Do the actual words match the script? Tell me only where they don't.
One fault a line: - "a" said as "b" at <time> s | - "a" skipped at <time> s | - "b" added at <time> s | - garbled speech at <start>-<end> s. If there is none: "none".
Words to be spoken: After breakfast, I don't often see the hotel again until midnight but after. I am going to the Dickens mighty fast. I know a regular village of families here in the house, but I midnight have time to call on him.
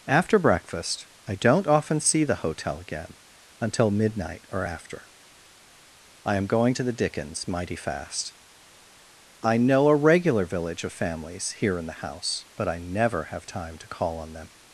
- "but" said as "or" at 4.5 s
- "midnight" said as "never" at 12.8 s
- "him" said as "them" at 14.3 s